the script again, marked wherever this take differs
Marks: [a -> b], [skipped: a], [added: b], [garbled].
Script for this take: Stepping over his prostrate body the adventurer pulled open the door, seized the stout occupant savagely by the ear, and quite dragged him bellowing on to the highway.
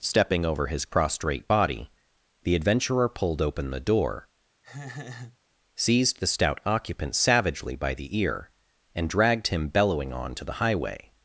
Stepping over his prostrate body the adventurer pulled open the door, seized the stout occupant savagely by the ear, and [skipped: quite] dragged him bellowing on to the highway.